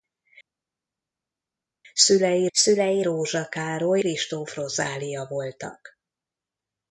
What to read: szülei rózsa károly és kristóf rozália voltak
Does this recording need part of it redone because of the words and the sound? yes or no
yes